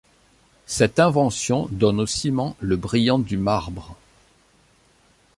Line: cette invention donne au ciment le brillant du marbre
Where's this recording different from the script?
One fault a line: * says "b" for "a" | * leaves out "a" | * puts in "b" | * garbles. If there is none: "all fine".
all fine